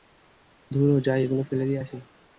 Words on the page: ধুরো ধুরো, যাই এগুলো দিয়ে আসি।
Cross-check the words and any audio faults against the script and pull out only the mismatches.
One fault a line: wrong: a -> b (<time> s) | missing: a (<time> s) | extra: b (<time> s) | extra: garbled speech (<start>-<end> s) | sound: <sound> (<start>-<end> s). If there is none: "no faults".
missing: ধুরো (0.9 s)
extra: ফেলে (1.4 s)